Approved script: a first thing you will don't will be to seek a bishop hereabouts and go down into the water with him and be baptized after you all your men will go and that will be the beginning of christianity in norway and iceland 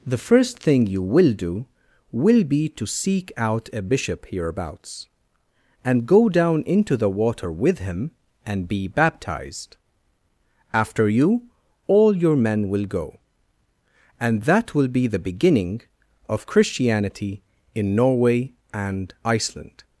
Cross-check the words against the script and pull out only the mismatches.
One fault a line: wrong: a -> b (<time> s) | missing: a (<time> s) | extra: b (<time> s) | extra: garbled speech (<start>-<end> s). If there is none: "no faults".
wrong: a -> the (0.1 s)
wrong: don't -> do (1.3 s)
extra: out (3.4 s)